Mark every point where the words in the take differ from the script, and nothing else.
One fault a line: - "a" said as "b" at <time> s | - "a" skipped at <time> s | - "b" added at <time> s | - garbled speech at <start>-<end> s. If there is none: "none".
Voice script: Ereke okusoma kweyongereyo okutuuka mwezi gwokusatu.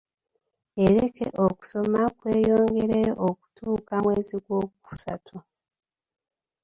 none